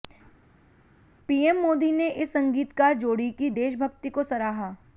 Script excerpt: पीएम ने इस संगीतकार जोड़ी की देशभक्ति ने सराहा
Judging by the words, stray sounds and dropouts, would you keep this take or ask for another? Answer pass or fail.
fail